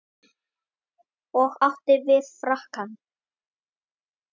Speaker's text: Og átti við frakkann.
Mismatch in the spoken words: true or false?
false